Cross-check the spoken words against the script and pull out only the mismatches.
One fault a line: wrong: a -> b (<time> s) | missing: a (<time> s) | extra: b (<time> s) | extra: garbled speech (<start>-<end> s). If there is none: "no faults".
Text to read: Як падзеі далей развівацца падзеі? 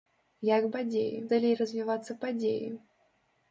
no faults